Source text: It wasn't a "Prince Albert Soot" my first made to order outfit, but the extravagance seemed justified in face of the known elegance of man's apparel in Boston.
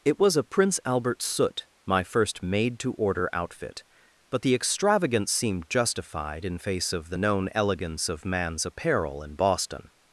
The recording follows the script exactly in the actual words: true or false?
false